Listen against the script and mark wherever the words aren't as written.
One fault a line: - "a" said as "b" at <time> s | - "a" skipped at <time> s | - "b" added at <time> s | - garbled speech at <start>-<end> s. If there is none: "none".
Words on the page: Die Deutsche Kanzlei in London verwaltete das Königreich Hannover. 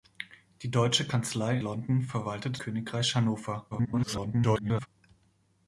- "in" skipped at 1.6 s
- "das" skipped at 2.6 s
- garbled speech at 3.7-4.9 s